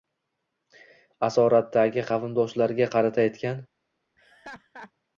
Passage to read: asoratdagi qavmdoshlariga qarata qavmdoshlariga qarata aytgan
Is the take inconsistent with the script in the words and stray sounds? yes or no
yes